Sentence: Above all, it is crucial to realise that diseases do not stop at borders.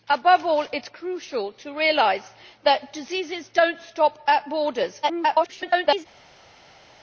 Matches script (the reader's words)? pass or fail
fail